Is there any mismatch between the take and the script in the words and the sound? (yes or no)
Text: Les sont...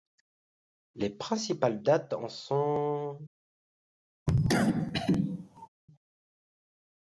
yes